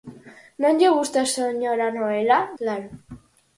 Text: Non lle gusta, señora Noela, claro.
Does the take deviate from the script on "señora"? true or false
false